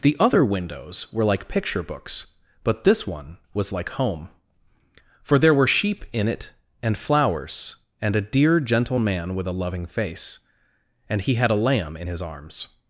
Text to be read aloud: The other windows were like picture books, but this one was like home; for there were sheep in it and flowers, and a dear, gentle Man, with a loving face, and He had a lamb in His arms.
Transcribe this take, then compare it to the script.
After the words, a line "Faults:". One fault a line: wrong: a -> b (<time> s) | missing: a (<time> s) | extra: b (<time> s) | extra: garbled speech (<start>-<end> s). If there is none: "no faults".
The other windows were like picture books, but this one was like home; for there were sheep in it and flowers, and a dear, gentle Man, with a loving face, and He had a lamb in His arms.
Faults:
no faults